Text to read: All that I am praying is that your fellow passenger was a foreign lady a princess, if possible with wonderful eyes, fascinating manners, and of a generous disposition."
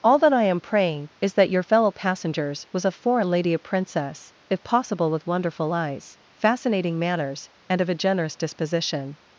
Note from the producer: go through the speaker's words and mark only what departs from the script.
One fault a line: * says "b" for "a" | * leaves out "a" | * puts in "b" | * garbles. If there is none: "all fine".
* says "passengers" for "passenger"